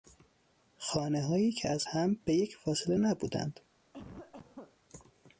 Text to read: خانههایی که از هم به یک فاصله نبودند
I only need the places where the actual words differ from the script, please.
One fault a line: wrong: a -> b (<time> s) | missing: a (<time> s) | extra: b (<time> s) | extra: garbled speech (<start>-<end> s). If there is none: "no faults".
no faults